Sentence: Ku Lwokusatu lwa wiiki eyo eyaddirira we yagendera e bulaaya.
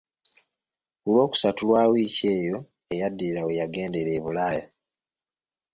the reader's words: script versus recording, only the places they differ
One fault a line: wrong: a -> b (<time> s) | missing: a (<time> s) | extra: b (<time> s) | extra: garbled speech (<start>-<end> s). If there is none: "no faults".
no faults